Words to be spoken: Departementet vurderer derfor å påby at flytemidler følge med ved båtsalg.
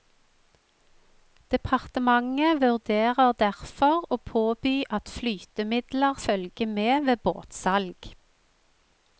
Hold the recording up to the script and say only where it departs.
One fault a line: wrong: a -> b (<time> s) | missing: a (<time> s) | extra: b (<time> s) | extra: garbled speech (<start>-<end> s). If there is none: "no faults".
no faults